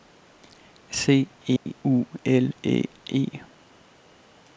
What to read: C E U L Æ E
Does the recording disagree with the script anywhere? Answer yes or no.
no